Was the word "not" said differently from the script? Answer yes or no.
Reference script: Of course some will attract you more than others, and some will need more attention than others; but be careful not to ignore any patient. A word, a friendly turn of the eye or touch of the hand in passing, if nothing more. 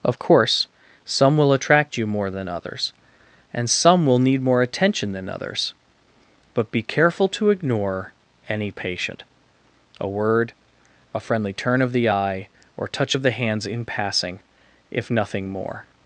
yes